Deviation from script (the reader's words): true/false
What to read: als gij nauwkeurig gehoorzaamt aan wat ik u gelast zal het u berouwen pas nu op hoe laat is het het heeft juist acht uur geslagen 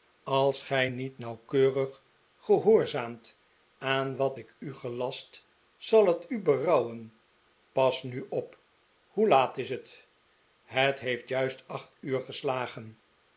true